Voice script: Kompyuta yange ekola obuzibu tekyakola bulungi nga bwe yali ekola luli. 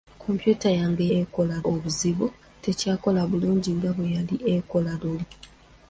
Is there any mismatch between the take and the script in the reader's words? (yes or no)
no